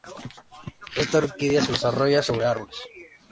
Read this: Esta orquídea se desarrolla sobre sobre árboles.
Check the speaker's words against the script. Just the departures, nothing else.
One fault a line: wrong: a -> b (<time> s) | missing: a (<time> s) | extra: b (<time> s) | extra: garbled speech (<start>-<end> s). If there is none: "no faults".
missing: sobre (2.5 s)